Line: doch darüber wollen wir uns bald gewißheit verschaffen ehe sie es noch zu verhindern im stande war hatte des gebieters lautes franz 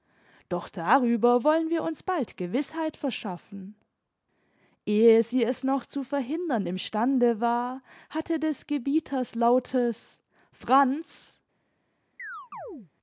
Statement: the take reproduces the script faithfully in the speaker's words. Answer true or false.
true